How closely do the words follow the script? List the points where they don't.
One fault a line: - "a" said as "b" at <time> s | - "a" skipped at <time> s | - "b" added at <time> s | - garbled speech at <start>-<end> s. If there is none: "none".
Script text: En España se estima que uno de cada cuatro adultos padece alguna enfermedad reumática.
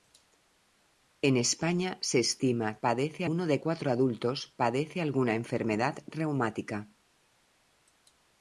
- "que" said as "padece" at 2.8 s
- "cada" skipped at 3.6 s